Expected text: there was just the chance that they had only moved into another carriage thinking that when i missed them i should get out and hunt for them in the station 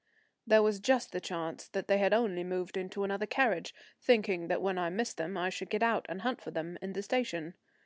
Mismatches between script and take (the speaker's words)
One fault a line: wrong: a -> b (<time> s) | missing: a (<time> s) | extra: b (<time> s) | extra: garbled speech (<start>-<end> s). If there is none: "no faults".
no faults